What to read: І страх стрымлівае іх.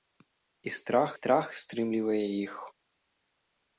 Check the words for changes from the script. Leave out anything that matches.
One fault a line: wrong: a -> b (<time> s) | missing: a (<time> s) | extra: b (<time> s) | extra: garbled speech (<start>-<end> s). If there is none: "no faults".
extra: страх (1.1 s)